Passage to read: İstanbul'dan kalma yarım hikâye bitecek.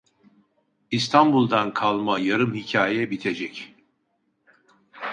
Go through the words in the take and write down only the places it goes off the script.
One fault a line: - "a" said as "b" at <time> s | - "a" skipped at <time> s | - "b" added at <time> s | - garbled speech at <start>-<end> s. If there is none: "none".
none